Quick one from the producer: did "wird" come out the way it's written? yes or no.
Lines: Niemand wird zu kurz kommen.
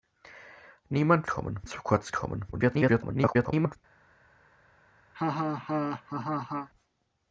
no